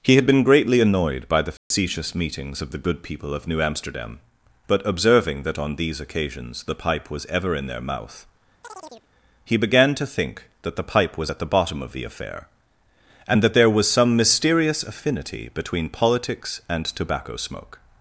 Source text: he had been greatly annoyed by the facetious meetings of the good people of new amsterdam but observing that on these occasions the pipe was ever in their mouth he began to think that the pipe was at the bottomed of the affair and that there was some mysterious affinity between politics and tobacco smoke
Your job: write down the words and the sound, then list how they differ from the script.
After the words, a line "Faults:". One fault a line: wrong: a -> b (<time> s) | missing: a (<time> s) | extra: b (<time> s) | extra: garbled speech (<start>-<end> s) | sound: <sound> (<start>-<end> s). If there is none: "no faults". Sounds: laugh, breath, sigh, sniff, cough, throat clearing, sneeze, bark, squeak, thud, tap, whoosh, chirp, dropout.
he had been greatly annoyed by the facetious meetings of the good people of new amsterdam but observing that on these occasions the pipe was ever in their mouth he began to think that the pipe was at the bottom of the affair and that there was some mysterious affinity between politics and tobacco smoke
Faults:
sound: dropout (1.6-1.7 s)
sound: chirp (8.6-9.1 s)
wrong: bottomed -> bottom (11.5 s)